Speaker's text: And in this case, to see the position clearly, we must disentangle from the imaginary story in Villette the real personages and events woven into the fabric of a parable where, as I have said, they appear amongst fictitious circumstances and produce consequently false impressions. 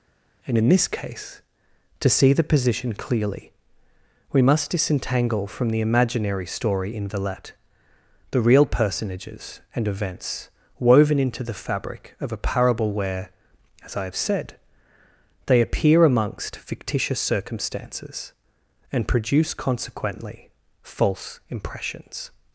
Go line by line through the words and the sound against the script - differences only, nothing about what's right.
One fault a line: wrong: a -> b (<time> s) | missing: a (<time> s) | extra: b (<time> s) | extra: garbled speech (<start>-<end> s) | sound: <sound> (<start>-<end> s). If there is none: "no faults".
no faults